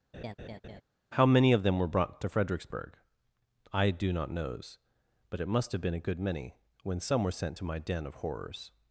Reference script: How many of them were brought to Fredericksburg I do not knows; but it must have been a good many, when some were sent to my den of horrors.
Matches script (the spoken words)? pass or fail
pass